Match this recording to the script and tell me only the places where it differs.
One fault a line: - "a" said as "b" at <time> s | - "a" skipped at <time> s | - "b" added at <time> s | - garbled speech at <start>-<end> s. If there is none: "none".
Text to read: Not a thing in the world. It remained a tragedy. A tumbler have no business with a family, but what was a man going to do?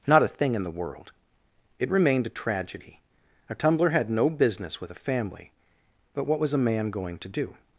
- "have" said as "had" at 3.9 s